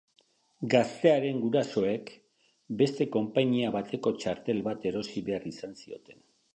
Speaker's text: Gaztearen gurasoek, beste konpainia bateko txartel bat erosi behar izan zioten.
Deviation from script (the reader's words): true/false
false